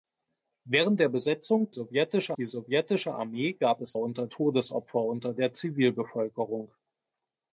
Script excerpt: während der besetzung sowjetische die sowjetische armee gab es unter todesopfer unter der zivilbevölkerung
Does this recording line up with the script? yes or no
yes